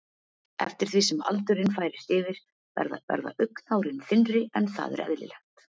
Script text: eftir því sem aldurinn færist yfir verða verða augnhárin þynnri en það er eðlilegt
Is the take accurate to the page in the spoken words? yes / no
yes